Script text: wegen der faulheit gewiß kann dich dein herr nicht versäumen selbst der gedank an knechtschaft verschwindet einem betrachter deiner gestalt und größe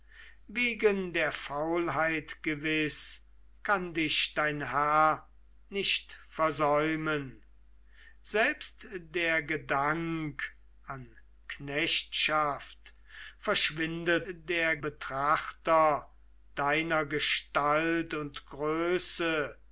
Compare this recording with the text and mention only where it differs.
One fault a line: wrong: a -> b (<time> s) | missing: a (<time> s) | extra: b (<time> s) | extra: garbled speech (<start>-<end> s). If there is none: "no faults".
wrong: einem -> der (14.3 s)